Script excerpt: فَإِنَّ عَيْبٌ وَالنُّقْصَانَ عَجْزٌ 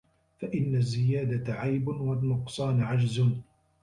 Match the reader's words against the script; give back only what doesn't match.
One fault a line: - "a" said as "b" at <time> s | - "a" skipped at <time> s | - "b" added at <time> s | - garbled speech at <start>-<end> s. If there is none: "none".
- "الزِّيَادَةَ" added at 0.8 s